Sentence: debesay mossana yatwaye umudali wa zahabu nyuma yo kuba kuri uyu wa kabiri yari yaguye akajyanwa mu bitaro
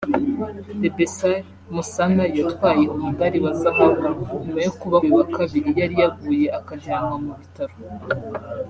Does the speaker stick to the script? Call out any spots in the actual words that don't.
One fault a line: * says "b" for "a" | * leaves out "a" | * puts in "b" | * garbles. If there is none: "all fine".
* leaves out "kuri"